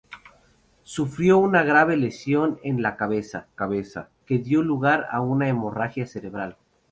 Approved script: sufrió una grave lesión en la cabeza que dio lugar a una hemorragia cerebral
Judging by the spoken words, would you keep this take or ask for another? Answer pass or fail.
fail